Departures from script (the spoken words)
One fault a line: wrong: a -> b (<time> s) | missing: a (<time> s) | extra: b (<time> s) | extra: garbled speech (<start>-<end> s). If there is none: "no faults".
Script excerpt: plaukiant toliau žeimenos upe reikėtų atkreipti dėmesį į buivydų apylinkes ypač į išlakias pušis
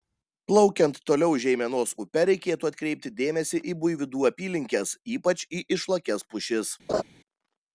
no faults